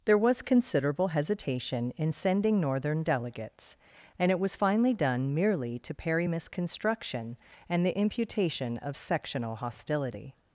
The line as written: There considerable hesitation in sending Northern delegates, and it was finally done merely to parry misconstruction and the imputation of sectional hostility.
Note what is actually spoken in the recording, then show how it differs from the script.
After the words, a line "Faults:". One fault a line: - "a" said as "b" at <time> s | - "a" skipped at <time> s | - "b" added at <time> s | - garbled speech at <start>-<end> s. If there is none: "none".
There was considerable hesitation in sending Northern delegates, and it was finally done merely to parry misconstruction and the imputation of sectional hostility.
Faults:
- "was" added at 0.2 s